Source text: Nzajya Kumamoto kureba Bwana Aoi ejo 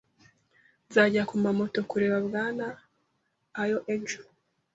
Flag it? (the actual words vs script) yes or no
no